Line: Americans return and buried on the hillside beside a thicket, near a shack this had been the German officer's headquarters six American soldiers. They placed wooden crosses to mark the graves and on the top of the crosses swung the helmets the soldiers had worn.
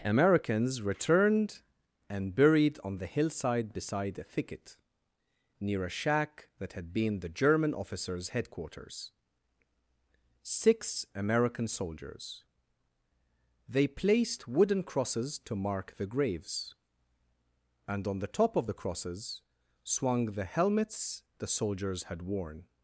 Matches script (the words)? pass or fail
fail